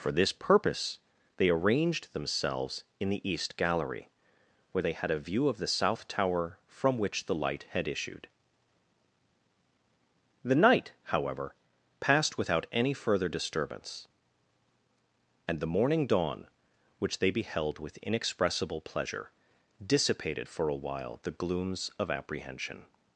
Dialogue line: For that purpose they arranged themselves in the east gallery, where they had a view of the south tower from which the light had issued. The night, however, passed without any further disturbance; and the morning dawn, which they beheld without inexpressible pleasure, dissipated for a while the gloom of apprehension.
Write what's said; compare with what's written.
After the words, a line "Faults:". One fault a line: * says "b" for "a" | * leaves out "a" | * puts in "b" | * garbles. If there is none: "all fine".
For this purpose they arranged themselves in the east gallery, where they had a view of the south tower from which the light had issued. The night, however, passed without any further disturbance; and the morning dawn, which they beheld with inexpressible pleasure, dissipated for a while the glooms of apprehension.
Faults:
* says "this" for "that"
* says "with" for "without"
* says "glooms" for "gloom"